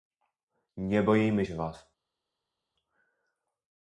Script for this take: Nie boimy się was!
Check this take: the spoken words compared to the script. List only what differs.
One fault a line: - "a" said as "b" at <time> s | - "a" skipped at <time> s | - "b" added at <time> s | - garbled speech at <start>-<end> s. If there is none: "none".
none